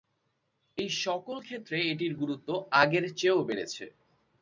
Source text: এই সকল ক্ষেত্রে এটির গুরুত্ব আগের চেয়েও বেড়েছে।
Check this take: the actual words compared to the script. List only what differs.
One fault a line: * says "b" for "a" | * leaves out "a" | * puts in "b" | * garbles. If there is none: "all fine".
all fine